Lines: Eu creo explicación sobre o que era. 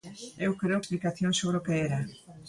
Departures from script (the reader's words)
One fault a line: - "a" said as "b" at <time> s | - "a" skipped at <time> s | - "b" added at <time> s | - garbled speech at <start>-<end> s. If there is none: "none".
none